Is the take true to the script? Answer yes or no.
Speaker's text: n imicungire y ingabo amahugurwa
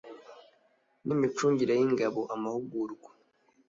yes